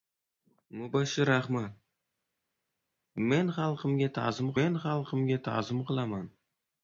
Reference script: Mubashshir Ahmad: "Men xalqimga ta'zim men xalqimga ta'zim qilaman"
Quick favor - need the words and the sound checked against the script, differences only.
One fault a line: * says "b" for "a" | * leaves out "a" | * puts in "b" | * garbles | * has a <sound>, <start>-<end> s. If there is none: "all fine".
all fine